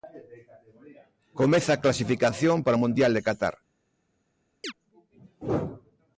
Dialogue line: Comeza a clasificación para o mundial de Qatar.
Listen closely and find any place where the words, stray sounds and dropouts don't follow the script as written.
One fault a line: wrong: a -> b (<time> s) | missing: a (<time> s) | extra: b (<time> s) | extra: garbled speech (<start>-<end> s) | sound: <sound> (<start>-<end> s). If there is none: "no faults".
sound: chirp (4.6-4.7 s)